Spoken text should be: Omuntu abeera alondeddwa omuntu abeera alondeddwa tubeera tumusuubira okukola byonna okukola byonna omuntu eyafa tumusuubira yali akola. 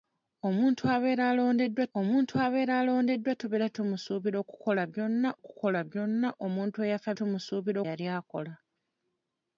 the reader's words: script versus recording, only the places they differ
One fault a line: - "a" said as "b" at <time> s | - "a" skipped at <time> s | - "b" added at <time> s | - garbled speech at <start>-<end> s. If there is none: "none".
none